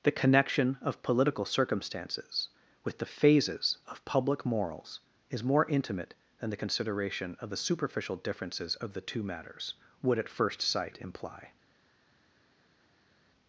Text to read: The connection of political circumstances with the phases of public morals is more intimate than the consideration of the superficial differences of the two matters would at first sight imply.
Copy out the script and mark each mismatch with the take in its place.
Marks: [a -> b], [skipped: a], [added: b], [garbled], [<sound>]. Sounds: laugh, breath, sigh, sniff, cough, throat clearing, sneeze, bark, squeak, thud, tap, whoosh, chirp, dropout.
The connection of political circumstances with the phases of public morals is more intimate than the consideration of the superficial differences of the two matters would at first sight imply.